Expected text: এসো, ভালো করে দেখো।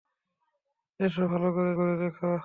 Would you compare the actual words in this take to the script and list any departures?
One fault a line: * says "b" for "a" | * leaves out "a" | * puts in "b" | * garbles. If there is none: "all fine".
* puts in "করে"